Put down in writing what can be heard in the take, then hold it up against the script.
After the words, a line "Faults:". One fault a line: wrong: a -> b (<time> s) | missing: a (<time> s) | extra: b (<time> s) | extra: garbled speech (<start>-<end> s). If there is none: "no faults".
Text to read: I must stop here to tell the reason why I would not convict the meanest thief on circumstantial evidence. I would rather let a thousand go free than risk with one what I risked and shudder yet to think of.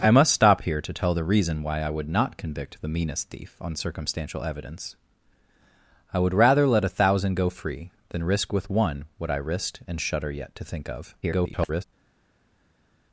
I must stop here to tell the reason why I would not convict the meanest thief on circumstantial evidence. I would rather let a thousand go free than risk with one what I risked and shudder yet to think of. [garbled]
Faults:
extra: garbled speech (11.2-11.8 s)